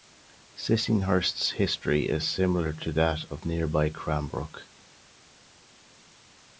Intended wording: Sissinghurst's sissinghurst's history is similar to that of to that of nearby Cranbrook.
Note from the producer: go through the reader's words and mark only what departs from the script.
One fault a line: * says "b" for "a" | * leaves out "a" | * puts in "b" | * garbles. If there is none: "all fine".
* leaves out "sissinghurst's"
* leaves out "to that of"